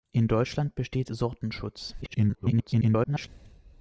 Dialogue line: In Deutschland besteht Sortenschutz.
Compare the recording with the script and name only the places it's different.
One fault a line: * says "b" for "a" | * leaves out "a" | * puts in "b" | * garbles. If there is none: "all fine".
* garbles